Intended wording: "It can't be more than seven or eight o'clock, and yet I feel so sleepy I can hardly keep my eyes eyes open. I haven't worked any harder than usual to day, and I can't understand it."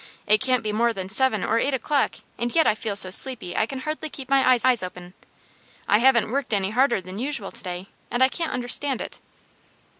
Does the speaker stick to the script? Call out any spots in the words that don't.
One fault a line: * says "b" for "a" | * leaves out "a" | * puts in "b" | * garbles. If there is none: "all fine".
all fine